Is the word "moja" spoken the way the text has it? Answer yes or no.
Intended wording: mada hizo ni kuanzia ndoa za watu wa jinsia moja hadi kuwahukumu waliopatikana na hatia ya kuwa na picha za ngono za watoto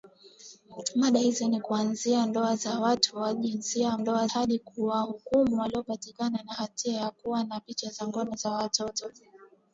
no